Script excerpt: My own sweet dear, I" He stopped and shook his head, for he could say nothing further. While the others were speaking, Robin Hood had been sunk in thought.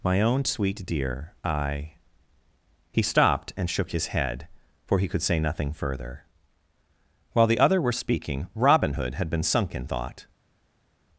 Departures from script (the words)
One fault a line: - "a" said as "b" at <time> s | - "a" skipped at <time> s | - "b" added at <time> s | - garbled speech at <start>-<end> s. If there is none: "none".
- "others" said as "other" at 7.6 s